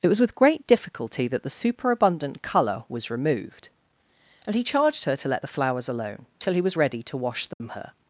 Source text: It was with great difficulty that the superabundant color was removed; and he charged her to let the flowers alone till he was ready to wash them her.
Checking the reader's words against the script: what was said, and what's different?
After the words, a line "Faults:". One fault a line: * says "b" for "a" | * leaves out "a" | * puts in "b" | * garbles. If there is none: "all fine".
It was with great difficulty that the superabundant color was removed; and he charged her to let the flowers alone till he was ready to wash them her.
Faults:
all fine